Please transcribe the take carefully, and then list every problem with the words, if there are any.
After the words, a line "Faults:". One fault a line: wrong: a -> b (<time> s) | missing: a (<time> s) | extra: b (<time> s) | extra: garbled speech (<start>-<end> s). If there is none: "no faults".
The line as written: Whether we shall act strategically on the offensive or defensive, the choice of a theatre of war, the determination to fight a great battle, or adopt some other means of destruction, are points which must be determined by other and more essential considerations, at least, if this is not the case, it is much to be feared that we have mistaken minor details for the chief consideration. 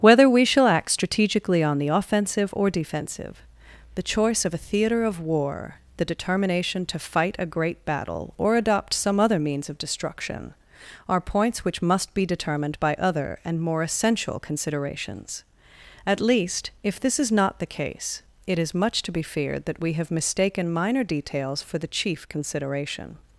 Whether we shall act strategically on the offensive or defensive, the choice of a theatre of war, the determination to fight a great battle, or adopt some other means of destruction, are points which must be determined by other and more essential considerations, at least, if this is not the case, it is much to be feared that we have mistaken minor details for the chief consideration.
Faults:
no faults